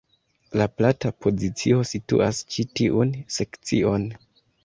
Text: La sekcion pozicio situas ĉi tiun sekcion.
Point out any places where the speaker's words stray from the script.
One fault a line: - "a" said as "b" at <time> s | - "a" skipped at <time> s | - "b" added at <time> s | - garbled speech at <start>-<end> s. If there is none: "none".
- "sekcion" said as "plata" at 0.8 s